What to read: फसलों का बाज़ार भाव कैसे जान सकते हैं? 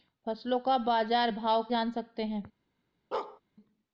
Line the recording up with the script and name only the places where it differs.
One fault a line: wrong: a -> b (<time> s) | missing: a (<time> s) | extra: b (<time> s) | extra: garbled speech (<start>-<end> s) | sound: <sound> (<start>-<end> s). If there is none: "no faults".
missing: कैसे (1.6 s)
sound: bark (3.1-3.4 s)